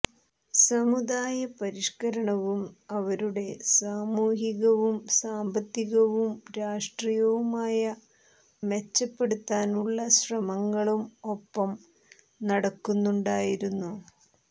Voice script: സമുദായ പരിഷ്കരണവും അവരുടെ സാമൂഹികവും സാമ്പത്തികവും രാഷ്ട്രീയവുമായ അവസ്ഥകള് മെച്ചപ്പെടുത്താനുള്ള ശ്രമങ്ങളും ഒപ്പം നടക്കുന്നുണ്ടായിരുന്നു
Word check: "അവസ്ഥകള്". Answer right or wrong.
wrong